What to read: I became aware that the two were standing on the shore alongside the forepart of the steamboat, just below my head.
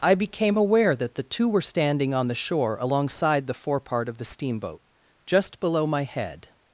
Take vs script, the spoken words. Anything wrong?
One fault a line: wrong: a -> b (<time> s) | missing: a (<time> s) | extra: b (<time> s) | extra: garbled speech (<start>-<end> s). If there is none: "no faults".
no faults